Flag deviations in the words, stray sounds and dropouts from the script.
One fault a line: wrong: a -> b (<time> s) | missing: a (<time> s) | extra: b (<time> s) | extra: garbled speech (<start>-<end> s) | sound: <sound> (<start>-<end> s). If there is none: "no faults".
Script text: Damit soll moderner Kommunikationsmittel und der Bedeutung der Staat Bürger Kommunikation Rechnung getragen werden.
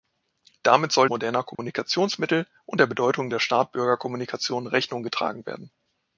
sound: dropout (1.5-1.6 s)